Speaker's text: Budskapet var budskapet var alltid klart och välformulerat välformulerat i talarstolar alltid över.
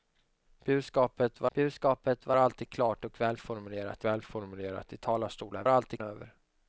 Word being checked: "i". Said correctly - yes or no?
yes